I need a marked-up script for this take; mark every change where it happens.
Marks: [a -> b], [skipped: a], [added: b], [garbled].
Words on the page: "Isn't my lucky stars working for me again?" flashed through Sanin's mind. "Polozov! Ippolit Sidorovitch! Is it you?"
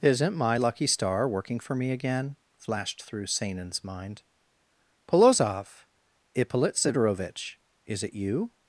"Isn't my lucky [stars -> star] working for me again?" flashed through Sanin's mind. "Polozov! Ippolit Sidorovitch! Is it you?"